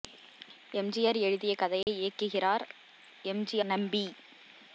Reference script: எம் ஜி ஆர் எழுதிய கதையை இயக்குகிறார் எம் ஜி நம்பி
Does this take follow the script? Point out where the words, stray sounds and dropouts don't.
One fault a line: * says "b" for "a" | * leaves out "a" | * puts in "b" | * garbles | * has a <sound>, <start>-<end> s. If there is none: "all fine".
* has a dropout, 1.8-1.9 s